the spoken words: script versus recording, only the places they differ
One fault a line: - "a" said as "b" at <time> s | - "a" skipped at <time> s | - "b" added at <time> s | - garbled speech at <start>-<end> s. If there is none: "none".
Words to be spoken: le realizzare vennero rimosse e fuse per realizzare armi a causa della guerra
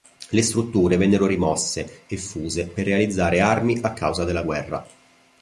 - "realizzare" said as "strutture" at 0.4 s